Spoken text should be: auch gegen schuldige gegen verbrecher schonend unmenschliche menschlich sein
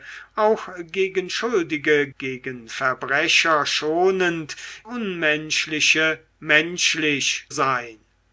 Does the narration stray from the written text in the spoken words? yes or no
no